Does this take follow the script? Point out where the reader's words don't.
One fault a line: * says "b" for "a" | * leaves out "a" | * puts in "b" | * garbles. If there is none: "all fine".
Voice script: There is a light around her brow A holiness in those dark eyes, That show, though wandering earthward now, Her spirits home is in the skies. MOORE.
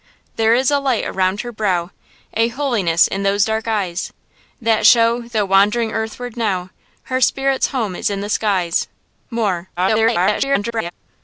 * garbles